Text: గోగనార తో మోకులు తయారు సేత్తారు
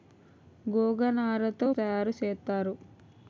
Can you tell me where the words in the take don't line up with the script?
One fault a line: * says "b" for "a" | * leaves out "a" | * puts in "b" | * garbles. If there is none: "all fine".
* leaves out "మోకులు"